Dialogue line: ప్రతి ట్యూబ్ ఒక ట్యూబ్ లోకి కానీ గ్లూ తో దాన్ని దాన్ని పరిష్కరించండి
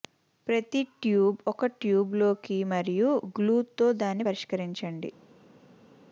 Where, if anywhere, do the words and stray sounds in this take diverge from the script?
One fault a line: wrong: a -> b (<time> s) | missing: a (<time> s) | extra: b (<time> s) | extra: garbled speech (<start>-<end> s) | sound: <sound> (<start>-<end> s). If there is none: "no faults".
wrong: కానీ -> మరియు (2.7 s)
missing: దాన్ని (4.3 s)